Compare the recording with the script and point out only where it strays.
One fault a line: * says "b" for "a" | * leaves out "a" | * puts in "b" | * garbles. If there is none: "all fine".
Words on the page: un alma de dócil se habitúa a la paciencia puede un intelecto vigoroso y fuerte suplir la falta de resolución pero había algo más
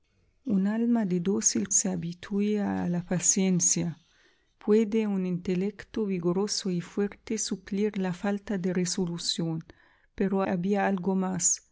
all fine